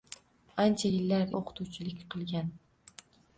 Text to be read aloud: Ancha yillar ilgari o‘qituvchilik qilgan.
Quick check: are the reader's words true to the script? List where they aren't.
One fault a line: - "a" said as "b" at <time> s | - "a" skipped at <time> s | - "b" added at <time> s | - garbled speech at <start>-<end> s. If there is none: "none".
- "ilgari" skipped at 1.3 s